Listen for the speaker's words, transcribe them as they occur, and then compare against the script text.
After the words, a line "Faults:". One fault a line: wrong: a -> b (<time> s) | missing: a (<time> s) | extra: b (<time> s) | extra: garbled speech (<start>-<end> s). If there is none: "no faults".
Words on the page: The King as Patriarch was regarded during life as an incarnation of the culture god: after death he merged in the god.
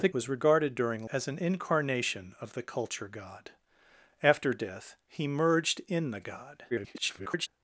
The Was regarded during as an incarnation of the culture god: after death he merged in the god. [garbled]
Faults:
missing: King as Patriarch (0.1 s)
missing: life (1.1 s)
extra: garbled speech (6.7-7.5 s)